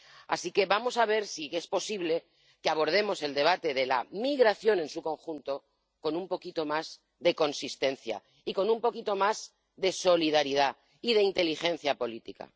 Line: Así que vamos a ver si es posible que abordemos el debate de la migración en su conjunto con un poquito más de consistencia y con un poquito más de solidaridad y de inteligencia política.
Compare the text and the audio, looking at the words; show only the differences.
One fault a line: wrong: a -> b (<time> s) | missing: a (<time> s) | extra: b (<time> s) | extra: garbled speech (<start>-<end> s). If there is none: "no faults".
no faults